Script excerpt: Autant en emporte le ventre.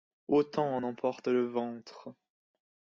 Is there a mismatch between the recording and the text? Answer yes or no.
no